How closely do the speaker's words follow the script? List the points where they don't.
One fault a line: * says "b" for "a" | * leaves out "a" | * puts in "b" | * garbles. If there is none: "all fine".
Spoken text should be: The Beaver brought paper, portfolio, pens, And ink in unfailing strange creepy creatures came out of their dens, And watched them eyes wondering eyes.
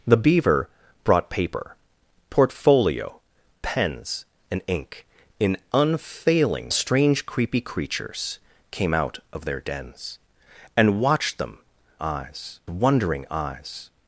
all fine